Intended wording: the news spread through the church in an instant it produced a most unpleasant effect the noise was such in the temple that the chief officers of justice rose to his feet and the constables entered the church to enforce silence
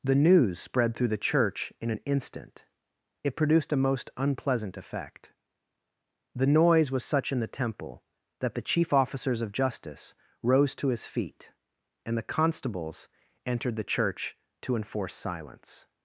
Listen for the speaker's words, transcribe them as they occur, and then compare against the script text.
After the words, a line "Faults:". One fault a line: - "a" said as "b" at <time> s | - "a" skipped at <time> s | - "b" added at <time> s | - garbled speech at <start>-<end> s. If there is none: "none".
the news spread through the church in an instant it produced a most unpleasant effect the noise was such in the temple that the chief officers of justice rose to his feet and the constables entered the church to enforce silence
Faults:
none